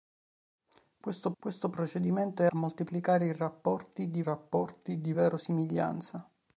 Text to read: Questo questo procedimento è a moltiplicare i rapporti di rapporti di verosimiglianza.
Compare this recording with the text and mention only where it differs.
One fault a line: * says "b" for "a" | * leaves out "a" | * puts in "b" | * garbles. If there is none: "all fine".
all fine